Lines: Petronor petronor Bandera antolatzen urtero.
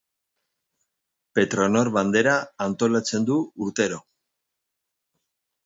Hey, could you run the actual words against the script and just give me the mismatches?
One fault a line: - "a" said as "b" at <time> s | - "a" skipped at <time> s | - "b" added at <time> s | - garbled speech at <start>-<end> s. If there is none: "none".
- "petronor" skipped at 1.9 s
- "du" added at 3.3 s